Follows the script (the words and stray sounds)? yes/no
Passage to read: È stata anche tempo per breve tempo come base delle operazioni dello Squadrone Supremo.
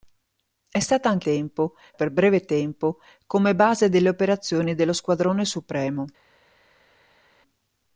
yes